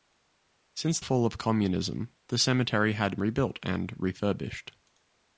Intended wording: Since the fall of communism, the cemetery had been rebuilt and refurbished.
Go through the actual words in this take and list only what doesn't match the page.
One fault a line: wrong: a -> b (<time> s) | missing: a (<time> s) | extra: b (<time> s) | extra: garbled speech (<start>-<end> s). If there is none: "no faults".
missing: the (1.0 s)
missing: been (3.2 s)